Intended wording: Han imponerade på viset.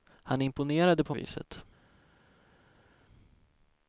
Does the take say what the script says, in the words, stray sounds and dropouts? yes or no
yes